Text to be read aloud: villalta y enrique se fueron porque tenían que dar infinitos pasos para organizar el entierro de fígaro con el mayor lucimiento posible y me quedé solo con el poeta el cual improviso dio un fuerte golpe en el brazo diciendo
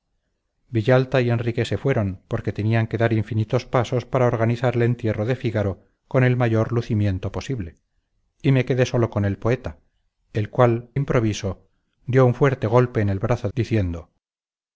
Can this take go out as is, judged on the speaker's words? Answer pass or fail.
pass